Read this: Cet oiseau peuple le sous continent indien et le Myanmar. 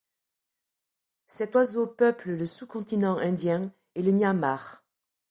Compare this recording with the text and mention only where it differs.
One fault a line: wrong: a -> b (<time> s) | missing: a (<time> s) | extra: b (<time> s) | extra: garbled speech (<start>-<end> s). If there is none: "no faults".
no faults